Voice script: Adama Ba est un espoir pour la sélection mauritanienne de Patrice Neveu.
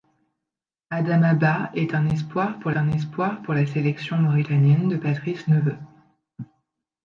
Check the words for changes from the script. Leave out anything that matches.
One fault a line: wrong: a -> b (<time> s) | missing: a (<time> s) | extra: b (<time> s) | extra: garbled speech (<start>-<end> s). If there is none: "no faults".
extra: un espoir pour (2.7 s)